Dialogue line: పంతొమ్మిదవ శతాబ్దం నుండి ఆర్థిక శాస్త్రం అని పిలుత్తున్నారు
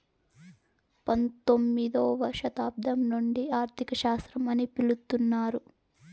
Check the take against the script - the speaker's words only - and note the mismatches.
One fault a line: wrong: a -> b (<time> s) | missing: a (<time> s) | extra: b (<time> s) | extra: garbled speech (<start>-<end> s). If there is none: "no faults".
no faults